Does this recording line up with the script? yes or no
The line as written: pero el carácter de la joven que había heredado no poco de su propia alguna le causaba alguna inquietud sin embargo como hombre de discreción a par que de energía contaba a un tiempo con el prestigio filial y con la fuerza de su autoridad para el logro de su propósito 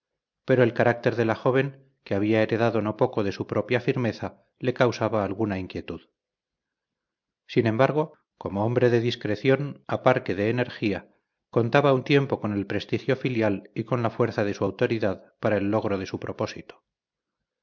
no